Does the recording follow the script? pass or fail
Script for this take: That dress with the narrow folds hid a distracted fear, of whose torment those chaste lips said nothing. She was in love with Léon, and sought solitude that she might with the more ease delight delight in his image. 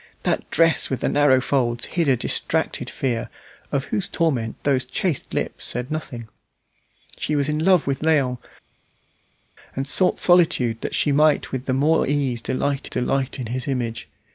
pass